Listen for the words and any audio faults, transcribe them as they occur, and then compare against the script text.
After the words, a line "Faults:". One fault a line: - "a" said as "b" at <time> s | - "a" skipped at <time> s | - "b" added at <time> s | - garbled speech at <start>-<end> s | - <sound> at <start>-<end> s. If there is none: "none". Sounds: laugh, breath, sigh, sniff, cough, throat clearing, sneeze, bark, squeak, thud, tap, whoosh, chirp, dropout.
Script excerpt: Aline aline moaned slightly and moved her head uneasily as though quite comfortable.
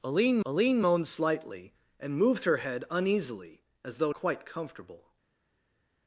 Aline aline moaned slightly and moved her head uneasily as though quite comfortable.
Faults:
none